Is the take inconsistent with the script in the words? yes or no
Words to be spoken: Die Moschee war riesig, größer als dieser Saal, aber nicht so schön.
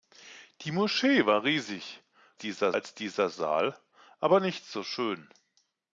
yes